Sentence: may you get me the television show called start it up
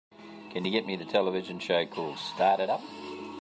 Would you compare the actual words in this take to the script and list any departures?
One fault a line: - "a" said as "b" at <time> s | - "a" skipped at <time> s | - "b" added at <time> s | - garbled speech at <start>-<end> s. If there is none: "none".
- "may" said as "can" at 0.5 s